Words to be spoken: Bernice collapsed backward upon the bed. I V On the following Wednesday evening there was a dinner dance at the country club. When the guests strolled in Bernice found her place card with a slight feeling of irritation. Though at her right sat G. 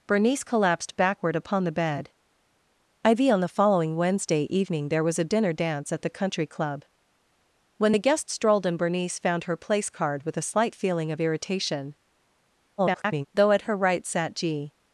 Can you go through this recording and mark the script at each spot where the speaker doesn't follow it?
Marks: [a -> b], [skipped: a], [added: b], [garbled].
Bernice collapsed backward upon the bed. I V On the following Wednesday evening there was a dinner dance at the country club. When the guests strolled in Bernice found her place card with a slight feeling of irritation. [garbled] Though at her right sat G.